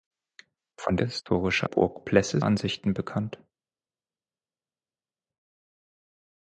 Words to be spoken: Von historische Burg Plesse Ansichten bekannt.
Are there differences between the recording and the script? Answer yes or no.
no